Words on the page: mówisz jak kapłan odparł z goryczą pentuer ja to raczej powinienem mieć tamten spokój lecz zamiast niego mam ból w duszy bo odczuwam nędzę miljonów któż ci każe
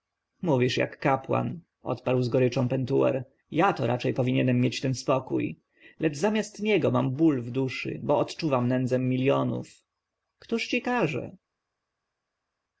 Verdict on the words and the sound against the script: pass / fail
fail